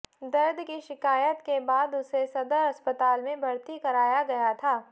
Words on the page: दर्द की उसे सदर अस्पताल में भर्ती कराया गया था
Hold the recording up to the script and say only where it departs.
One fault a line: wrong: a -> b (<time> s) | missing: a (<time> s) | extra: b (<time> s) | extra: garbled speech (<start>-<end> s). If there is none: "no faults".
extra: शिकायत के बाद (0.8 s)